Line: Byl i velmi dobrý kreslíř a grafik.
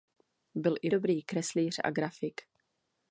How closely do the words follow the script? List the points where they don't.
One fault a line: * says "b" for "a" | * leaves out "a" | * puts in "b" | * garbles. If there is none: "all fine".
* leaves out "velmi"